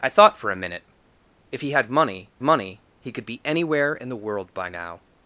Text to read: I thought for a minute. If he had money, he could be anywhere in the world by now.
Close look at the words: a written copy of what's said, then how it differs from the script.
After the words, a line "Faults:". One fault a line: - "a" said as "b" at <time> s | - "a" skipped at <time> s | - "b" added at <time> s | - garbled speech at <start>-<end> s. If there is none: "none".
I thought for a minute. If he had money money, he could be anywhere in the world by now.
Faults:
- "money" added at 2.4 s